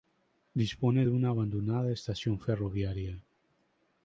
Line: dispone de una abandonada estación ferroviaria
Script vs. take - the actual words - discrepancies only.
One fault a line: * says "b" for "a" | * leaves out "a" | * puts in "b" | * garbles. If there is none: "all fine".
all fine